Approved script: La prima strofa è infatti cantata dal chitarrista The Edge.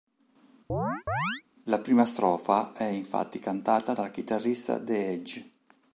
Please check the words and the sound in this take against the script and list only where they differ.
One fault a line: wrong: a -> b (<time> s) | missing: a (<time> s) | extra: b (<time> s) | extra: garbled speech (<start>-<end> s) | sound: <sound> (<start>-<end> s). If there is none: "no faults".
sound: chirp (0.7-1.4 s)